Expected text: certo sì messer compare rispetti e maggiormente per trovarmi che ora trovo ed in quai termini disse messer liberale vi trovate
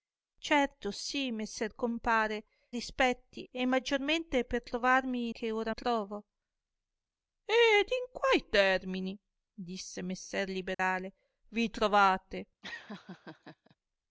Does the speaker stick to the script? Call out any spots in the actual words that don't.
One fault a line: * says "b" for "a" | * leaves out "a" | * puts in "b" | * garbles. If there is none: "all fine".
all fine